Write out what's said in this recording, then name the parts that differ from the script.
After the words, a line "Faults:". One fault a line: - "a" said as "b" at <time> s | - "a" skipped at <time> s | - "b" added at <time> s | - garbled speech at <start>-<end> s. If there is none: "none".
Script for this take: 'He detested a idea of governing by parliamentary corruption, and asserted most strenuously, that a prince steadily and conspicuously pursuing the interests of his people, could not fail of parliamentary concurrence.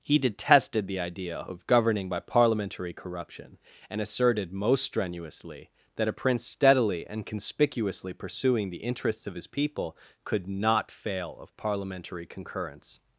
'He detested the idea of governing by parliamentary corruption, and asserted most strenuously, that a prince steadily and conspicuously pursuing the interests of his people, could not fail of parliamentary concurrence.
Faults:
- "a" said as "the" at 0.9 s